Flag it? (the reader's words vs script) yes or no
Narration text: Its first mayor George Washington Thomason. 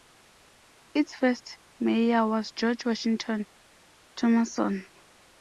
yes